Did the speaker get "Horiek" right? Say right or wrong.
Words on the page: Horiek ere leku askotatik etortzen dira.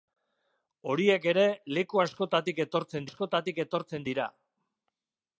right